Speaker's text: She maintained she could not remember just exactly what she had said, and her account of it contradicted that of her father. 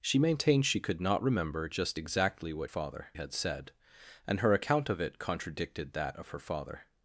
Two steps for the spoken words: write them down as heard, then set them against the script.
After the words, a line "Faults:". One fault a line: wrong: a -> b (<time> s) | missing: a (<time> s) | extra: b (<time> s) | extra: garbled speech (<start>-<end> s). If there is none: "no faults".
She maintained she could not remember just exactly what father had said, and her account of it contradicted that of her father.
Faults:
wrong: she -> father (2.7 s)